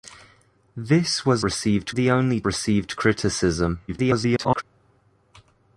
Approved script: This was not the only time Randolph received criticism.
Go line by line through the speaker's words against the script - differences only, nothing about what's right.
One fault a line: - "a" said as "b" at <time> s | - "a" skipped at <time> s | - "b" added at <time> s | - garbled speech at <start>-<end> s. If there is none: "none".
- "not" said as "received" at 1.4 s
- "time Randolph" skipped at 2.4 s
- garbled speech at 3.9-4.6 s